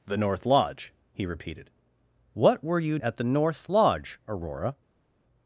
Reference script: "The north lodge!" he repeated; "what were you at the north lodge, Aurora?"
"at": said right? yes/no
yes